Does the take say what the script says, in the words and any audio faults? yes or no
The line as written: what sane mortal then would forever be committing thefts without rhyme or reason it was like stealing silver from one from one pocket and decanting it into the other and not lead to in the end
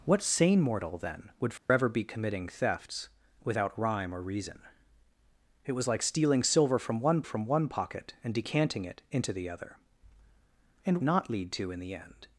no